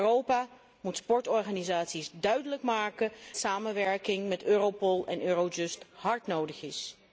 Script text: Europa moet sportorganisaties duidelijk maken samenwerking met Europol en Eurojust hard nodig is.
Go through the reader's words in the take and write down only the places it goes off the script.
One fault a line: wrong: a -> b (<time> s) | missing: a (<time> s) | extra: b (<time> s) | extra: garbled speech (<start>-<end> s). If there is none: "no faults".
no faults